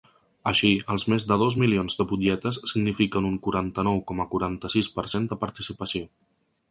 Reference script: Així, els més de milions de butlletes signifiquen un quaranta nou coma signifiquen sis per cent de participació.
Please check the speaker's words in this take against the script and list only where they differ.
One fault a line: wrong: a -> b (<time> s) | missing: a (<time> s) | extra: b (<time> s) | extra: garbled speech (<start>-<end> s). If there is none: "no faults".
extra: dos (1.4 s)
wrong: signifiquen -> quaranta (4.4 s)